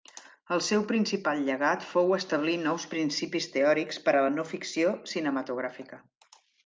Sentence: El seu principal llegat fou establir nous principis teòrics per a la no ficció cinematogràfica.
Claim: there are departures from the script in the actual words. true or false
false